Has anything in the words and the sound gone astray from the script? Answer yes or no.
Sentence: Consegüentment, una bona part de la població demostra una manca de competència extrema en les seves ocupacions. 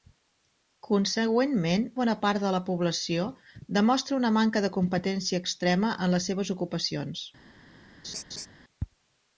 yes